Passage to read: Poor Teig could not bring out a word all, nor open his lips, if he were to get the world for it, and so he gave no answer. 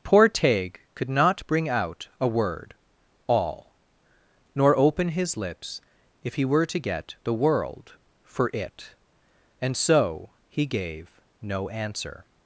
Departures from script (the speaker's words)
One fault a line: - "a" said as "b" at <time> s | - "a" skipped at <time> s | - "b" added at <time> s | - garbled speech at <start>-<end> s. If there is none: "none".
none